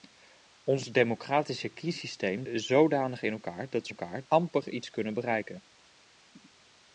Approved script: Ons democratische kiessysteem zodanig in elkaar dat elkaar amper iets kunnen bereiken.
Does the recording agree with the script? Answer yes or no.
yes